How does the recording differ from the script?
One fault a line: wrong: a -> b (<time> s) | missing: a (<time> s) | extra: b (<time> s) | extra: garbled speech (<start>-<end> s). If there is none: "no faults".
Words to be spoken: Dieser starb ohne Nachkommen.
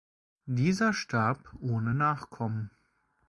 no faults